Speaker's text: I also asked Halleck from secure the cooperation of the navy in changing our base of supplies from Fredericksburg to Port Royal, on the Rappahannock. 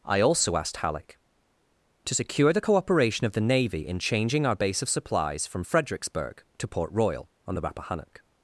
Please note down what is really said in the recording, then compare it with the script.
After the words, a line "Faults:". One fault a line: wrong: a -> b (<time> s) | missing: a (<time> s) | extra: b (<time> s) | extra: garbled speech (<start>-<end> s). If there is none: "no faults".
I also asked Halleck to secure the cooperation of the navy in changing our base of supplies from Fredericksburg to Port Royal, on the Rappahannock.
Faults:
wrong: from -> to (2.0 s)